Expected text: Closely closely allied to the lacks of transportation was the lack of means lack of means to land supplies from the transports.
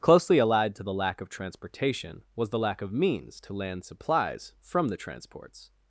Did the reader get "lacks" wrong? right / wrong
wrong